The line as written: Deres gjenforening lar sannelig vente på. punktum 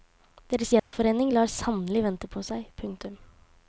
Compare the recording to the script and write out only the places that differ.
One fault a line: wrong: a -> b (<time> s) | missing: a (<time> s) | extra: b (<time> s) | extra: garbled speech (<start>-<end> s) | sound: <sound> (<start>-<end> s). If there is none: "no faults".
sound: dropout (0.8-0.9 s)
extra: seg (2.5 s)